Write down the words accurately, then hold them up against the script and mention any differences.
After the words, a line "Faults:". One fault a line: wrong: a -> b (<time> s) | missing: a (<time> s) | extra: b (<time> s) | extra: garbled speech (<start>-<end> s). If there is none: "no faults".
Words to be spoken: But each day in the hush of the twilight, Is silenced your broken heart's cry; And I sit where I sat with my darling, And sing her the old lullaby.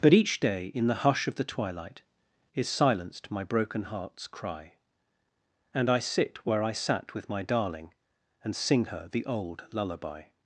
But each day in the hush of the twilight, Is silenced my broken heart's cry; And I sit where I sat with my darling, And sing her the old lullaby.
Faults:
wrong: your -> my (3.3 s)